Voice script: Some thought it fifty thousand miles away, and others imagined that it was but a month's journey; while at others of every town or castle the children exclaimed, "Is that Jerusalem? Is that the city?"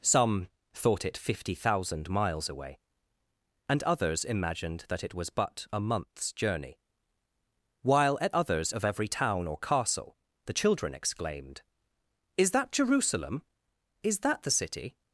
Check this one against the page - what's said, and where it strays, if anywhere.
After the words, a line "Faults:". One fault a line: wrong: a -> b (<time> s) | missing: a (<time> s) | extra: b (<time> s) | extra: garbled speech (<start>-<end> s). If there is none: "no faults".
Some thought it fifty thousand miles away, and others imagined that it was but a month's journey; while at others of every town or castle the children exclaimed, "Is that Jerusalem? Is that the city?"
Faults:
no faults